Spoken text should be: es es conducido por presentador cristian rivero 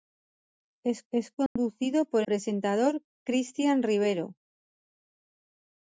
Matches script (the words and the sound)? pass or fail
fail